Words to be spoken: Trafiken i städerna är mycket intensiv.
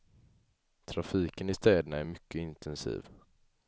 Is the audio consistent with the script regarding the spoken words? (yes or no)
yes